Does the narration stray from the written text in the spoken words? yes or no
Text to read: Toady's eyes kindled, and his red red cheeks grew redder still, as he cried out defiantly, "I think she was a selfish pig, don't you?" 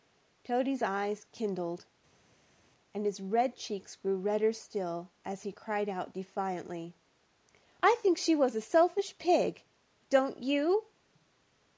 yes